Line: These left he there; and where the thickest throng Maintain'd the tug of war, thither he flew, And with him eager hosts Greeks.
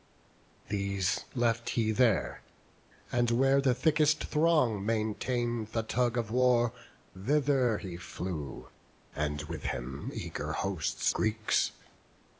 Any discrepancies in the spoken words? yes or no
no